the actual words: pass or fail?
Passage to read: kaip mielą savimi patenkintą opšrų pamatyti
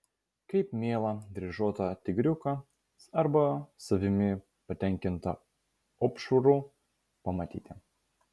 fail